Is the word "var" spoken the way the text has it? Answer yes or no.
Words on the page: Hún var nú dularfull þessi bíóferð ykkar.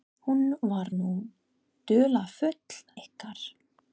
yes